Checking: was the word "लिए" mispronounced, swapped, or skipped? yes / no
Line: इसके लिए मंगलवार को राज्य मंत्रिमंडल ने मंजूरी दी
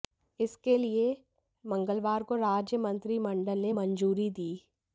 no